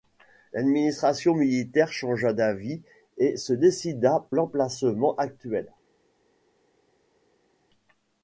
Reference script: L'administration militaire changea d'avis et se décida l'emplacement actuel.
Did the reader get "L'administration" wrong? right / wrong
right